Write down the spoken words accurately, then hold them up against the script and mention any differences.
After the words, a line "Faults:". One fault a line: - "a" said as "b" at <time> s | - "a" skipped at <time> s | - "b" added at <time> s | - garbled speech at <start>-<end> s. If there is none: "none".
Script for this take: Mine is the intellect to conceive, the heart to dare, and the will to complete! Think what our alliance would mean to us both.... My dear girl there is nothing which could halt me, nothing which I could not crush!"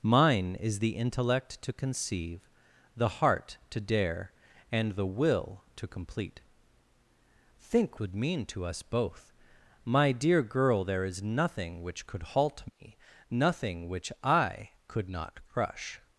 Mine is the intellect to conceive, the heart to dare, and the will to complete! Think would mean to us both.... My dear girl there is nothing which could halt me, nothing which I could not crush!"
Faults:
- "what our alliance" skipped at 8.0 s